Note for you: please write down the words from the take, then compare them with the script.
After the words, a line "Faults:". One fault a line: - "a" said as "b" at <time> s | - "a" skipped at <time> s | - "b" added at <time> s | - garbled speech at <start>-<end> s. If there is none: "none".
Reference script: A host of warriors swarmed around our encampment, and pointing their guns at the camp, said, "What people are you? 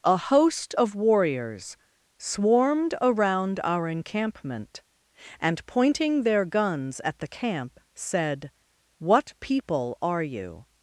A host of warriors swarmed around our encampment, and pointing their guns at the camp, said, "What people are you?
Faults:
none